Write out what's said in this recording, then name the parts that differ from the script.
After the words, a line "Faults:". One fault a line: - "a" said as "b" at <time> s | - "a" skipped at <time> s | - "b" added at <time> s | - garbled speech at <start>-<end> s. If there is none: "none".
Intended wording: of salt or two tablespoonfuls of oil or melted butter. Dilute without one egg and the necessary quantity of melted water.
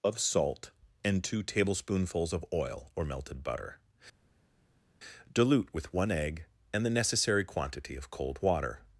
of salt and two tablespoonfuls of oil or melted butter. Dilute with one egg and the necessary quantity of cold water.
Faults:
- "or" said as "and" at 1.0 s
- "without" said as "with" at 5.7 s
- "melted" said as "cold" at 8.1 s